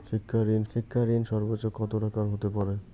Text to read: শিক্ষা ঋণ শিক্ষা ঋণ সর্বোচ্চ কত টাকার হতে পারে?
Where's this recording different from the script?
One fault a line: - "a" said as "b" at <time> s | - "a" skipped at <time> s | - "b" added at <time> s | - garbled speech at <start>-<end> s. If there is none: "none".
none